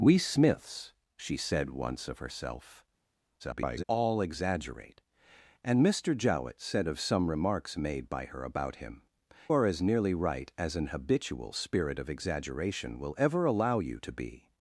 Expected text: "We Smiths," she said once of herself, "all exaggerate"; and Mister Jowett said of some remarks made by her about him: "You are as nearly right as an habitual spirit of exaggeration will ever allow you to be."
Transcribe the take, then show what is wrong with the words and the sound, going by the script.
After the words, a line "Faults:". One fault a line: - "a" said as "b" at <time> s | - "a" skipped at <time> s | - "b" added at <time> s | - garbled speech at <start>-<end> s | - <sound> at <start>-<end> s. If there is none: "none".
"We Smiths," she said once of herself, [garbled] "all exaggerate"; and Mister Jowett said of some remarks made by her about him: "Are as nearly right as an habitual spirit of exaggeration will ever allow you to be."
Faults:
- garbled speech at 3.4-3.8 s
- "You" skipped at 9.0 s